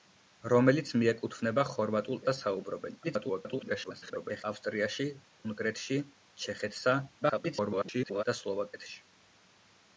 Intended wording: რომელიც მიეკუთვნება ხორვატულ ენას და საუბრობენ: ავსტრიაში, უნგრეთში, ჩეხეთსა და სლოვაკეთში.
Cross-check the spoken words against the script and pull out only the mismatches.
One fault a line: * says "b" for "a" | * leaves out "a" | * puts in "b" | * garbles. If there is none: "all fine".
* leaves out "ენას"
* garbles
* garbles